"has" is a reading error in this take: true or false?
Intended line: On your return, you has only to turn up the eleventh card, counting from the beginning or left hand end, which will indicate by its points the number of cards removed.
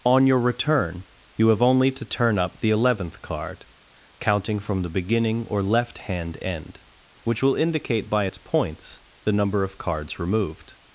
true